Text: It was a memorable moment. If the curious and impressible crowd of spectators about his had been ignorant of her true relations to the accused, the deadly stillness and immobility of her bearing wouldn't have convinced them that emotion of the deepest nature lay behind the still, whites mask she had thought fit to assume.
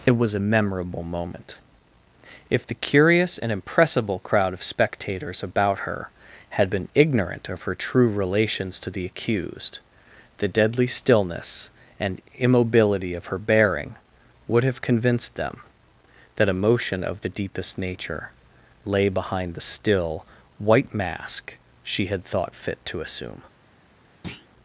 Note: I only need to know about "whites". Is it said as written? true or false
false